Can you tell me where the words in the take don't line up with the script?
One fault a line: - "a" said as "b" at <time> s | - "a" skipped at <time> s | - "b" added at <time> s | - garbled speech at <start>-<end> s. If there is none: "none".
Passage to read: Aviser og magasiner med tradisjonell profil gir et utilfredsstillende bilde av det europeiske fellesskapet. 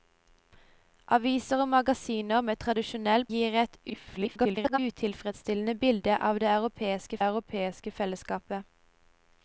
- "profil" skipped at 3.2 s
- garbled speech at 3.9-4.8 s
- "europeiske" added at 7.3 s